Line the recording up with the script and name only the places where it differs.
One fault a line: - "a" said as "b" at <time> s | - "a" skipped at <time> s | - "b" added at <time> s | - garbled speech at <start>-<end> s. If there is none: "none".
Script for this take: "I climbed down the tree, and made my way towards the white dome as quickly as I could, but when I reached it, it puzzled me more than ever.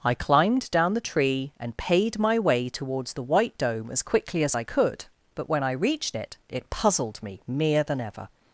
- "made" said as "paid" at 1.8 s
- "more" said as "mere" at 7.5 s